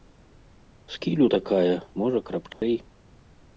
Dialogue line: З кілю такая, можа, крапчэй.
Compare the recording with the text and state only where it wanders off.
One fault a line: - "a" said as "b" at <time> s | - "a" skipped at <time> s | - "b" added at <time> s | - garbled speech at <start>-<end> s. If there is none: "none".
none